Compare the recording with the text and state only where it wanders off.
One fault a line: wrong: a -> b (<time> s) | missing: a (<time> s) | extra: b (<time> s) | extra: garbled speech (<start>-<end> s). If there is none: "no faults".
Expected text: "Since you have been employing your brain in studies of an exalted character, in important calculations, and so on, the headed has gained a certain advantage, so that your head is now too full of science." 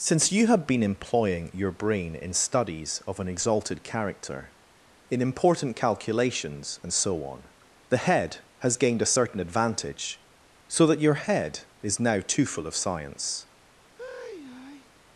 wrong: headed -> head (8.0 s)